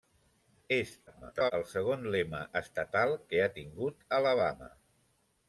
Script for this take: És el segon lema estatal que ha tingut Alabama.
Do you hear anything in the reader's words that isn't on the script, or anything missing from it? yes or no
yes